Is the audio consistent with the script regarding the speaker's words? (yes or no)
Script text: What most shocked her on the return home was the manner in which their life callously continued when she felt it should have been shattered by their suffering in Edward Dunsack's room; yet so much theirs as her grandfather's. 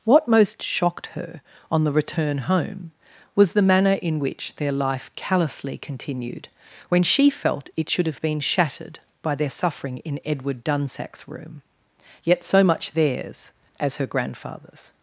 yes